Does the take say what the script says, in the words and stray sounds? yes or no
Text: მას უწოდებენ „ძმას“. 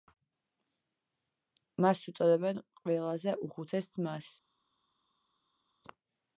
no